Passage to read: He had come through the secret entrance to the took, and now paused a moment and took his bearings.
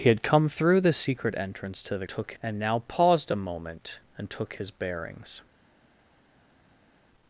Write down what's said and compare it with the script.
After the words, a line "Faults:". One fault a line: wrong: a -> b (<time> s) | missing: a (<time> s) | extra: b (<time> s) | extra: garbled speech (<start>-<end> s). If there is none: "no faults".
He had come through the secret entrance to the took, and now paused a moment and took his bearings.
Faults:
no faults